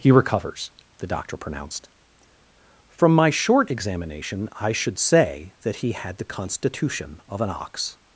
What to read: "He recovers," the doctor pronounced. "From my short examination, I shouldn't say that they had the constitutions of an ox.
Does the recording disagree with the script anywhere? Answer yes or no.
yes